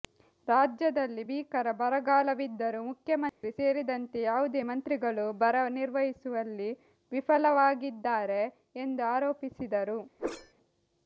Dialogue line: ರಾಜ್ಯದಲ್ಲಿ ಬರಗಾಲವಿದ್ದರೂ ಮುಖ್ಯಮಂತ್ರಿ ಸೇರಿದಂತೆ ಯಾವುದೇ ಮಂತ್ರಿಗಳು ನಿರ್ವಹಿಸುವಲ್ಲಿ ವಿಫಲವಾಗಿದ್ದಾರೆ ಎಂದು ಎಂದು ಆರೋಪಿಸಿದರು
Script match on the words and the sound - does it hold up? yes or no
no